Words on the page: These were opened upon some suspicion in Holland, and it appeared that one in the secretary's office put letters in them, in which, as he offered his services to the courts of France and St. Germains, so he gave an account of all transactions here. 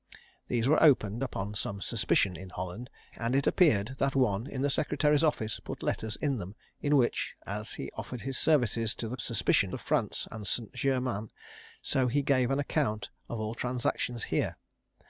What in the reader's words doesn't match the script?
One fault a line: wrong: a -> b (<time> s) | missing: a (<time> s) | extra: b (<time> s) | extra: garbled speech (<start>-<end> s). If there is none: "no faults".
wrong: courts -> suspicion (9.2 s)